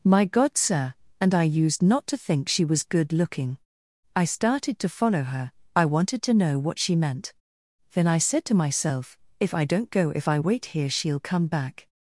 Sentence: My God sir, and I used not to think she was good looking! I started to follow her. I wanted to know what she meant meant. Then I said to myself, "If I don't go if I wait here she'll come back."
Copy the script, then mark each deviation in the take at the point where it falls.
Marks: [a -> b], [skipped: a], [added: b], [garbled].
My God sir, and I used not to think she was good looking! I started to follow her. I wanted to know what she meant [skipped: meant.] Then I said to myself, "If I don't go if I wait here she'll come back."